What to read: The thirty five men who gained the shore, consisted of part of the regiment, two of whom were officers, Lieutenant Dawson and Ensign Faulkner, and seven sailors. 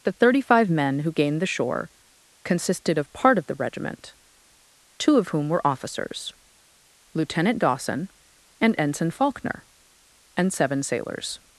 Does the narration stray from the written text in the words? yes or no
no